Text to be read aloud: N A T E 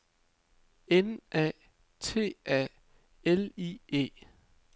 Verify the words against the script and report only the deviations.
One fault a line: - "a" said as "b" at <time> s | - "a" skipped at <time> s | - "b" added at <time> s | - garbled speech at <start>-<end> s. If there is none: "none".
- "A L I" added at 2.5 s